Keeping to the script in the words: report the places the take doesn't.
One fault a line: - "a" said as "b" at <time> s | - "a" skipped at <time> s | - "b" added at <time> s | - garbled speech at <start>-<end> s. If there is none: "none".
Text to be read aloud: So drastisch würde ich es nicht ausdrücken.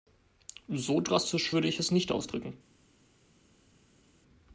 none